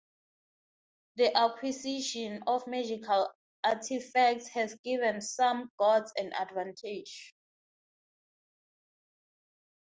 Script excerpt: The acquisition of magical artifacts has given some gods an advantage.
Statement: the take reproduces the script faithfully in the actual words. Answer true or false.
true